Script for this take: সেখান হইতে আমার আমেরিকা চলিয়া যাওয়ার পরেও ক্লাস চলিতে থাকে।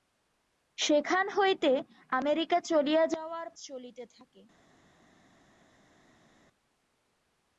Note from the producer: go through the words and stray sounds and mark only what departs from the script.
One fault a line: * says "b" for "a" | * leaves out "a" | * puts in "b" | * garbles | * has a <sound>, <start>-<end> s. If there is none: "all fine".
* leaves out "আমার"
* leaves out "পরেও ক্লাস"